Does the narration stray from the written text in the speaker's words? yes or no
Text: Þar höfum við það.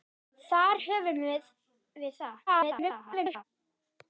yes